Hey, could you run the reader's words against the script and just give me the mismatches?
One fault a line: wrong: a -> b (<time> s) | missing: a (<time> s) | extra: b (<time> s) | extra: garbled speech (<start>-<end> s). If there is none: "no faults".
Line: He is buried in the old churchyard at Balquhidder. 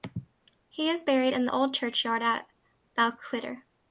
no faults